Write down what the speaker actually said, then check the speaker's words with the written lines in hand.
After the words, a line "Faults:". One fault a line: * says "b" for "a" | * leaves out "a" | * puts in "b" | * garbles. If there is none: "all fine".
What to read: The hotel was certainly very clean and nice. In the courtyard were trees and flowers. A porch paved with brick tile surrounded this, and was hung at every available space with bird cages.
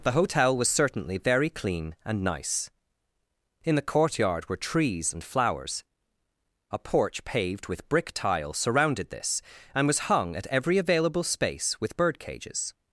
The hotel was certainly very clean and nice. In the courtyard were trees and flowers. A porch paved with brick tile surrounded this, and was hung at every available space with bird cages.
Faults:
all fine